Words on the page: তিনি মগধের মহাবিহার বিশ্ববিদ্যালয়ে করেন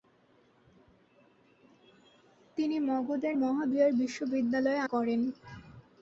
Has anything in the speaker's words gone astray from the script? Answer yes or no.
no